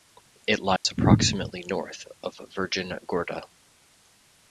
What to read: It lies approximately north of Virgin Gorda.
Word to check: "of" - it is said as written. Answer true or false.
true